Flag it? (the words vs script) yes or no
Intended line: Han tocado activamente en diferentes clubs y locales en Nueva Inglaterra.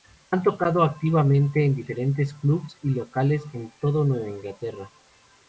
yes